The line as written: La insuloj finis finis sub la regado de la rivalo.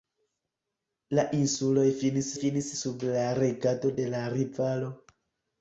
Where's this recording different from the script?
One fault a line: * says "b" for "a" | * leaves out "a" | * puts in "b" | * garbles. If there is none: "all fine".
all fine